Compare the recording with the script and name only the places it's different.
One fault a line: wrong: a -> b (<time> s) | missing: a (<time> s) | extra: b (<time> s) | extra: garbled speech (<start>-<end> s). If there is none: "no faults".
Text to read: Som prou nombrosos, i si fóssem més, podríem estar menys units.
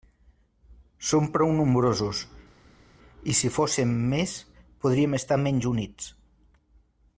no faults